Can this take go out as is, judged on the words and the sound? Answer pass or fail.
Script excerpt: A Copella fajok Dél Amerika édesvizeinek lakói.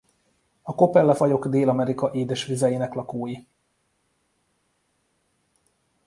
pass